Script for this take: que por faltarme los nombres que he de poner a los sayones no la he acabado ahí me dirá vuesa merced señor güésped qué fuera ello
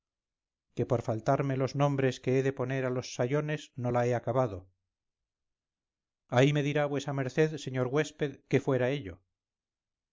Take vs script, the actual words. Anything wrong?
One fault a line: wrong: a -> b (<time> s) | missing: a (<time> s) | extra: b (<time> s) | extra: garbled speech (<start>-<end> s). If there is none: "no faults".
no faults